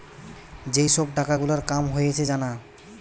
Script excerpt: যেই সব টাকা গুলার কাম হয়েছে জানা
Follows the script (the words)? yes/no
yes